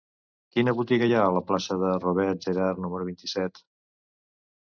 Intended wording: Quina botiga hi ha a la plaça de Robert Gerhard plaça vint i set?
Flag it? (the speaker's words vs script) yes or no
yes